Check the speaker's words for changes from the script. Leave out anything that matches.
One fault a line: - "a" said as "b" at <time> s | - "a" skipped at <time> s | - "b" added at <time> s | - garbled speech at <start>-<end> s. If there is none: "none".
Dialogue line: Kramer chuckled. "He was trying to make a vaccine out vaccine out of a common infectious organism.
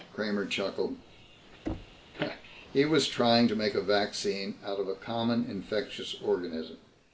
- "vaccine out" skipped at 4.8 s